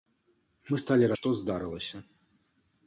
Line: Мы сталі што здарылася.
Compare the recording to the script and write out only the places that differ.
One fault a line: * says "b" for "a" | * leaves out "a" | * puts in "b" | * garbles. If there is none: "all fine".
all fine